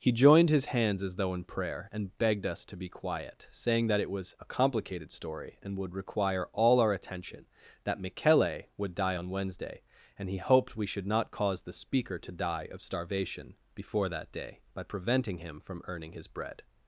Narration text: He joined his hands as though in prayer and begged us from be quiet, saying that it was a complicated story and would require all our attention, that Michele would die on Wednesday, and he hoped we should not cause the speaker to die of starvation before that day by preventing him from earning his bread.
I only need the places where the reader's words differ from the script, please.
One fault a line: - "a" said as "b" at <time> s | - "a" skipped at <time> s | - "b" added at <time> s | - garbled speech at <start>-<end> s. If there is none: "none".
- "from" said as "to" at 2.6 s